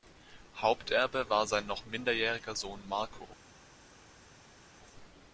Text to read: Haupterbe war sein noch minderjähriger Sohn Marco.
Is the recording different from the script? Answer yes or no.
no